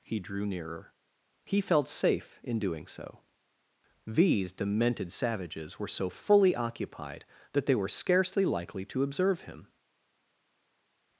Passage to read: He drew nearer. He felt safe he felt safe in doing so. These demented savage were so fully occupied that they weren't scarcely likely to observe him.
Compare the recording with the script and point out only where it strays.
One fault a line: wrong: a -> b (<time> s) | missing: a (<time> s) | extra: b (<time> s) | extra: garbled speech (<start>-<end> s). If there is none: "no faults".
missing: he felt safe (2.4 s)
wrong: savage -> savages (5.1 s)
wrong: weren't -> were (7.8 s)